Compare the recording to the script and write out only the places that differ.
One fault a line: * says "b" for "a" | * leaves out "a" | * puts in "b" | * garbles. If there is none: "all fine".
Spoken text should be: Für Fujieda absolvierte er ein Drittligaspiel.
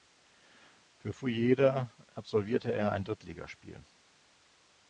all fine